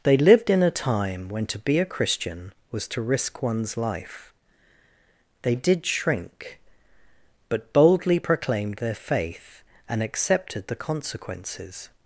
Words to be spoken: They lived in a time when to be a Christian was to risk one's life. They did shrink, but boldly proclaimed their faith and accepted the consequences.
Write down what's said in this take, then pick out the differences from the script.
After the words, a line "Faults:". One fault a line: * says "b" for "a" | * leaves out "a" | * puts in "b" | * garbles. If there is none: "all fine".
They lived in a time when to be a Christian was to risk one's life. They did shrink, but boldly proclaimed their faith and accepted the consequences.
Faults:
all fine